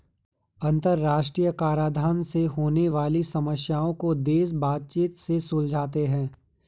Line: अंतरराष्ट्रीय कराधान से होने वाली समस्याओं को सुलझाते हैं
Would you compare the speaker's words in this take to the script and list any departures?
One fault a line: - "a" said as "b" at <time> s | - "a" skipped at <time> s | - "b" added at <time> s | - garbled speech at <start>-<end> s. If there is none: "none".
- "देश बातचीत से" added at 4.1 s